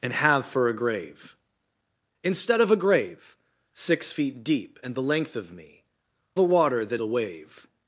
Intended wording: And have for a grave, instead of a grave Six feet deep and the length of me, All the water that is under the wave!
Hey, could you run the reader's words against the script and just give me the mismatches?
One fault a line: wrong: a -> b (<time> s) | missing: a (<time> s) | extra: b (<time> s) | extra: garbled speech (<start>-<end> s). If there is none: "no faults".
missing: All (5.8 s)
missing: is under (7.0 s)